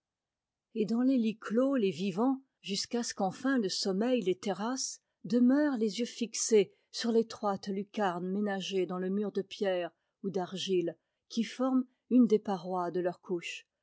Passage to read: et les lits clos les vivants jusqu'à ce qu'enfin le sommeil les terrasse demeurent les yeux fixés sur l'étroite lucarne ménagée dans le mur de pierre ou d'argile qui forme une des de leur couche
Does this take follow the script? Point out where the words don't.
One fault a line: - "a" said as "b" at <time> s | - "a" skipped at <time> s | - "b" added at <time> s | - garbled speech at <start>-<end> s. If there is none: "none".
- "dans" added at 0.9 s
- "parois" added at 12.4 s